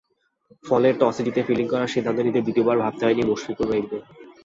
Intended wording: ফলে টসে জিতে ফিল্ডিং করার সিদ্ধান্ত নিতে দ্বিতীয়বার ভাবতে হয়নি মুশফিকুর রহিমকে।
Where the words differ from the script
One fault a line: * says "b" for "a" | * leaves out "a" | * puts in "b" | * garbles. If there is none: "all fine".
all fine